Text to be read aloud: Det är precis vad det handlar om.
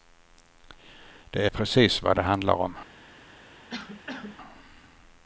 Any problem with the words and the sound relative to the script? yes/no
yes